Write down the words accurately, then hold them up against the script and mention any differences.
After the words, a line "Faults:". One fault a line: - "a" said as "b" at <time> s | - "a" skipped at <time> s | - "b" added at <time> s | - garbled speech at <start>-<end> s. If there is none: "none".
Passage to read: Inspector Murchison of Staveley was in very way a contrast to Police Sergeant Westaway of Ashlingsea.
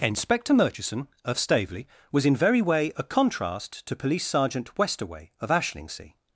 Inspector Murchison of Staveley was in very way a contrast to Police Sergeant Westaway of Ashlingsea.
Faults:
none